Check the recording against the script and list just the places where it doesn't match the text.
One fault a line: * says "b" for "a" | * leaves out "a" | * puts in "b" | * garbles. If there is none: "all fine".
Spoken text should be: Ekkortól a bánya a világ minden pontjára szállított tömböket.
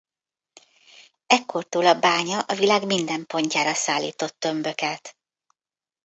all fine